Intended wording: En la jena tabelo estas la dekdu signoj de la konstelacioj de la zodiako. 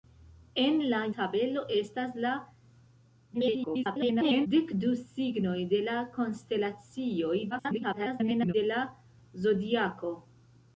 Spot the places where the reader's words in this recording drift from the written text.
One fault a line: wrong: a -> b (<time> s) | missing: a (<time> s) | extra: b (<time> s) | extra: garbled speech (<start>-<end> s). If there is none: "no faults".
missing: jena (1.0 s)
extra: garbled speech (3.3-4.5 s)
extra: garbled speech (7.5-8.5 s)